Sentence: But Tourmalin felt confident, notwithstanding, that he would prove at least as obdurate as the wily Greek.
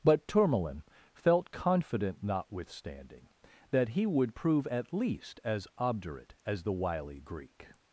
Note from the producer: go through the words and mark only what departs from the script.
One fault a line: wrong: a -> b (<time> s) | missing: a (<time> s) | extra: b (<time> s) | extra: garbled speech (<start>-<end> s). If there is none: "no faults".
no faults